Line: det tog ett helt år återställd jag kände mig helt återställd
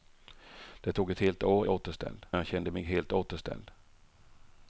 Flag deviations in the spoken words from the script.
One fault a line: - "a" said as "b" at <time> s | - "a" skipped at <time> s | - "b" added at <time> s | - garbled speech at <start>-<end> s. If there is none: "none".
none